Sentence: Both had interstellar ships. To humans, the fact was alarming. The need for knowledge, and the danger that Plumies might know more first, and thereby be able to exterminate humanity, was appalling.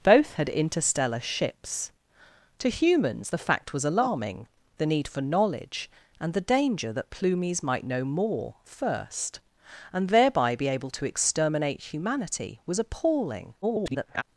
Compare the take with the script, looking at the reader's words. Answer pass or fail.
fail